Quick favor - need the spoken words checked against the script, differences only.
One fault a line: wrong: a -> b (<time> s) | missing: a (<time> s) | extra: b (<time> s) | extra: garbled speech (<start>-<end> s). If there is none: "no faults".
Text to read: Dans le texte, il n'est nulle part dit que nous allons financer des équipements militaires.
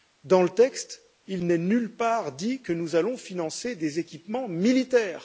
no faults